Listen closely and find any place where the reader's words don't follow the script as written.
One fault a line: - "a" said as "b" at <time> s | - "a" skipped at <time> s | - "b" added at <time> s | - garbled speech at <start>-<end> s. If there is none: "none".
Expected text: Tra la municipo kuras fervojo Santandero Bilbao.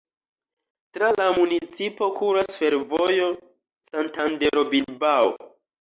none